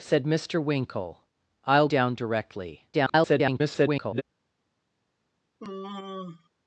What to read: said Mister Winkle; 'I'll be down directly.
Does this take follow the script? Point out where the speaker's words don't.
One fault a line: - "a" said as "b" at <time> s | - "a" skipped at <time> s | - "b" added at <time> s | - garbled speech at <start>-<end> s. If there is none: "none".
- "be" skipped at 1.9 s
- garbled speech at 2.9-4.2 s